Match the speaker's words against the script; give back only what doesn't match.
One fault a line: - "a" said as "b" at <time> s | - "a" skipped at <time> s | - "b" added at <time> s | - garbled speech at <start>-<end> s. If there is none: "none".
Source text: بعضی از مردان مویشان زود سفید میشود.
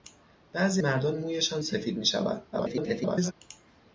- "از" skipped at 0.8 s
- "زود" skipped at 1.6 s
- garbled speech at 2.5-3.3 s